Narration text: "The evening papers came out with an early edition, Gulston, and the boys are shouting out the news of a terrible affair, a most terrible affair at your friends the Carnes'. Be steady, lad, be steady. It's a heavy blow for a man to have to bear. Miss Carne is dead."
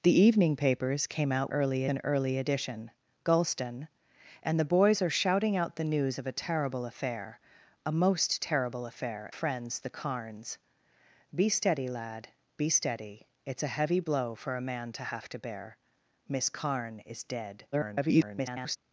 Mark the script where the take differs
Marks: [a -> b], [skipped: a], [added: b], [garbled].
"The evening papers came out [with -> early] an early edition, Gulston, and the boys are shouting out the news of a terrible affair, a most terrible affair [skipped: at your] friends the Carnes'. Be steady, lad, be steady. It's a heavy blow for a man to have to bear. Miss Carne is dead." [garbled]